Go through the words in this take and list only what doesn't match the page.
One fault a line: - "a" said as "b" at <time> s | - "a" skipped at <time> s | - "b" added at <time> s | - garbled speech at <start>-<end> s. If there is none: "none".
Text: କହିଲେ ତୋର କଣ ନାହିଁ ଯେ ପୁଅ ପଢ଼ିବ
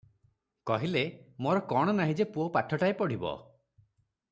- "ତୋର" said as "ମୋର" at 1.4 s
- "ପାଠଟାଏ" added at 2.5 s